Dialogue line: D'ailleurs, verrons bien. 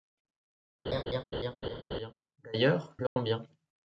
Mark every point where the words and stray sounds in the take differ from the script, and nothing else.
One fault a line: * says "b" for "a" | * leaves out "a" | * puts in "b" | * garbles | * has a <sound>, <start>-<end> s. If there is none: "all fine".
* has a laugh, 0.9-2.1 s
* has a dropout, 3.1-3.2 s